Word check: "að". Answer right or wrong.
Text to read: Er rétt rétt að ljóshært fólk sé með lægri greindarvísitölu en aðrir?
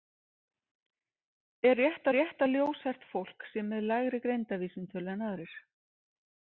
right